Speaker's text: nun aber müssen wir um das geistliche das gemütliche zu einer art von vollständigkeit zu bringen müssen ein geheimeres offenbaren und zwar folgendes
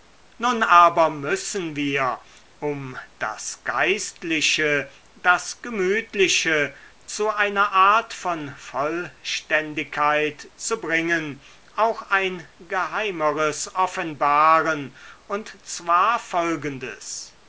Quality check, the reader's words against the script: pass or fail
fail